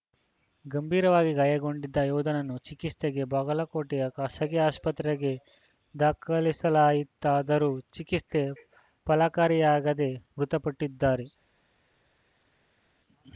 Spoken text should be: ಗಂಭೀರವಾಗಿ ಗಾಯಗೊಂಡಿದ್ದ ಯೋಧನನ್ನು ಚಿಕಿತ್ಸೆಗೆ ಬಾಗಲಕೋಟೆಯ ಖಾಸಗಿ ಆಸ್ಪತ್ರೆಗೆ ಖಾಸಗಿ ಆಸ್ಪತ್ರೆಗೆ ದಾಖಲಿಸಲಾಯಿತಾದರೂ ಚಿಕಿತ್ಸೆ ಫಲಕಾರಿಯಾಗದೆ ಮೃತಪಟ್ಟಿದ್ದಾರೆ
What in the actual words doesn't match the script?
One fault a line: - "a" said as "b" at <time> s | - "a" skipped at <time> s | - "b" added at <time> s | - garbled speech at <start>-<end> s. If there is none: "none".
- "ಖಾಸಗಿ ಆಸ್ಪತ್ರೆಗೆ" skipped at 5.3 s